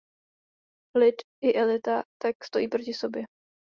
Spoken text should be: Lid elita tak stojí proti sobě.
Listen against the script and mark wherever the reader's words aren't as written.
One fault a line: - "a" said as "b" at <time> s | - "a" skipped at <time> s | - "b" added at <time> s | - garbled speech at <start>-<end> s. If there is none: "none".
- "i" added at 1.4 s